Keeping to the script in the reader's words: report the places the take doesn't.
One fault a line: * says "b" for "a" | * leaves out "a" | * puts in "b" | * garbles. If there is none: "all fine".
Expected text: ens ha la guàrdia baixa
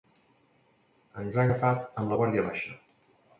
* puts in "agafat amb"